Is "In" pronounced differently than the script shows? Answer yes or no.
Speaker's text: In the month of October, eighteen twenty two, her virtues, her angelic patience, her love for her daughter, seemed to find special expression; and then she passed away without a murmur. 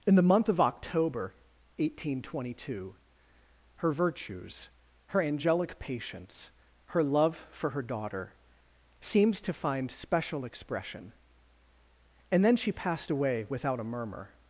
no